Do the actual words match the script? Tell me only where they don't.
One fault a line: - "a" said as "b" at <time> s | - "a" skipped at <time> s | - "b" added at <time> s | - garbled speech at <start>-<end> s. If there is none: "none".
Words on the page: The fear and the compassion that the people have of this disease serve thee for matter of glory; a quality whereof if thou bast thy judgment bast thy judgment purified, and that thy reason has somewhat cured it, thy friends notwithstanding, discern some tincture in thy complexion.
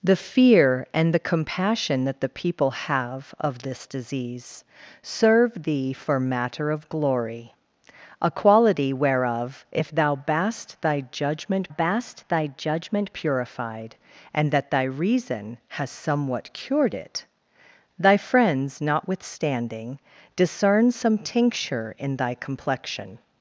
none